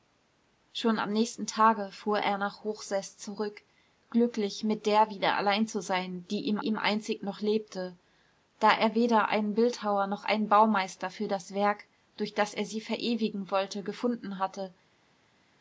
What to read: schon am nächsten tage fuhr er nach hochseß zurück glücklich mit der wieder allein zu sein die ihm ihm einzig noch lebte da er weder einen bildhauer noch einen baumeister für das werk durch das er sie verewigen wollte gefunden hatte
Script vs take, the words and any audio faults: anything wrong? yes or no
no